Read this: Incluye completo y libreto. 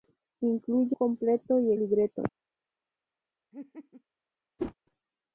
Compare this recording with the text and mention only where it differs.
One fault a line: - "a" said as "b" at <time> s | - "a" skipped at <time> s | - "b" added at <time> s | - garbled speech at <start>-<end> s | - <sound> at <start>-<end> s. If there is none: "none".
- laugh at 3.5-4.0 s
- whoosh at 4.6-4.7 s